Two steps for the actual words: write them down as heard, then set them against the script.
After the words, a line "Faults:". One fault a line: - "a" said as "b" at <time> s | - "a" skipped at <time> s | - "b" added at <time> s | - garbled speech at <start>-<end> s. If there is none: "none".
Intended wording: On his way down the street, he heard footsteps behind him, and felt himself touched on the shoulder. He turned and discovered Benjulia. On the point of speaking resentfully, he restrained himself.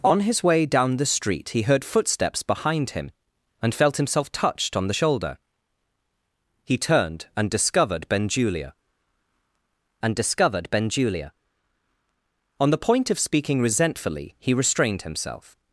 On his way down the street, he heard footsteps behind him, and felt himself touched on the shoulder. He turned and discovered Benjulia and discovered Benjulia. On the point of speaking resentfully, he restrained himself.
Faults:
- "and discovered Benjulia" added at 10.0 s